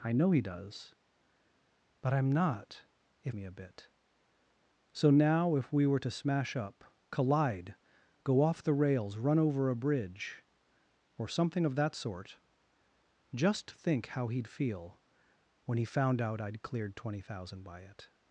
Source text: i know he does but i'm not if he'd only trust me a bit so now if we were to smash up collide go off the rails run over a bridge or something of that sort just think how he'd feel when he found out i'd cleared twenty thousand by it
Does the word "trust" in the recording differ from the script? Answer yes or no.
yes